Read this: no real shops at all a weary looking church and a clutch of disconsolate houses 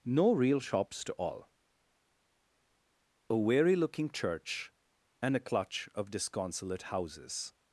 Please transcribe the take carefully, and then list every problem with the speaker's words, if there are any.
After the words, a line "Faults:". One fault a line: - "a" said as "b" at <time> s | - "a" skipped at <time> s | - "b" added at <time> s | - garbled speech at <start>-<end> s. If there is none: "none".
no real shops to all a weary looking church and a clutch of disconsolate houses
Faults:
- "at" said as "to" at 1.0 s